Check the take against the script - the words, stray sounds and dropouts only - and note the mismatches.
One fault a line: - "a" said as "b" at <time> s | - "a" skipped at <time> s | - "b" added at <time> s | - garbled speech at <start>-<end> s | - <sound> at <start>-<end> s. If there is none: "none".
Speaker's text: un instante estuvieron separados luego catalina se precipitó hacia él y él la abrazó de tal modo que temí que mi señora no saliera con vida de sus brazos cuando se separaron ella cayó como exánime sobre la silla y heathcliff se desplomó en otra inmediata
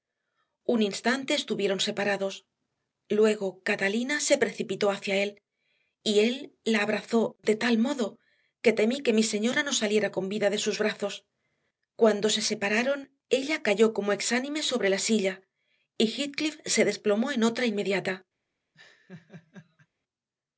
- laugh at 18.7-19.9 s